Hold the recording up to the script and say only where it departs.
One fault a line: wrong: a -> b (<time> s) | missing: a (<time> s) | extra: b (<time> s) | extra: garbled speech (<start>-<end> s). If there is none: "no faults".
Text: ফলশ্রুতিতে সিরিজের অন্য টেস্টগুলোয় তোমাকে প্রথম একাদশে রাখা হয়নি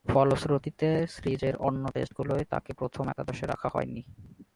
wrong: তোমাকে -> তাকে (2.5 s)